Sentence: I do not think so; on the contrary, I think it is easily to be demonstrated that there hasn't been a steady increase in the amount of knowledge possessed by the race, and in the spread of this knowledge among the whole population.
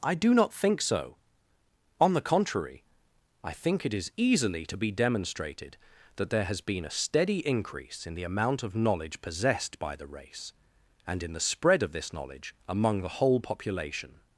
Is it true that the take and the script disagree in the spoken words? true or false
true